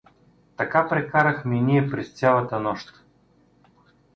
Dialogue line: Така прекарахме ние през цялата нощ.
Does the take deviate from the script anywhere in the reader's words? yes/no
no